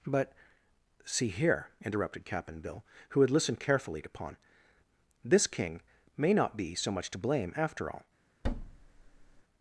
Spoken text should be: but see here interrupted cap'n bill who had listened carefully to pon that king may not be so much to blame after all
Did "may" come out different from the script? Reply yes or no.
no